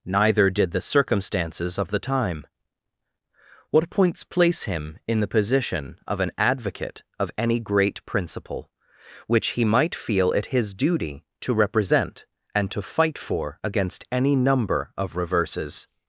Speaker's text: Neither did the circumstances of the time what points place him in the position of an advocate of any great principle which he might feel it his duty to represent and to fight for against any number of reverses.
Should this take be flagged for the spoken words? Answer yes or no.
no